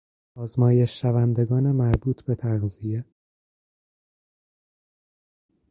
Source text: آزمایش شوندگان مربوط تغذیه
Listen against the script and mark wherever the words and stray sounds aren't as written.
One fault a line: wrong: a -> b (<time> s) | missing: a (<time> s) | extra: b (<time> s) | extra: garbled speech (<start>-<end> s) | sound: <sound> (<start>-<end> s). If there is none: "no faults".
extra: به (2.2 s)